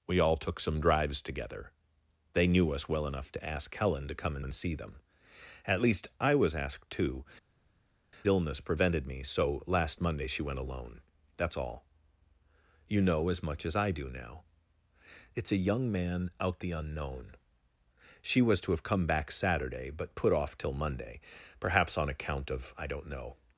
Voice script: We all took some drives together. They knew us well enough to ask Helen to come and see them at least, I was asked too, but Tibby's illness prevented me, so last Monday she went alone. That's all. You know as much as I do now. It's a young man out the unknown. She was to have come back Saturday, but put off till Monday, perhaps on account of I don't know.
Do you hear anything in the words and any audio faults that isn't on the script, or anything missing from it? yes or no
yes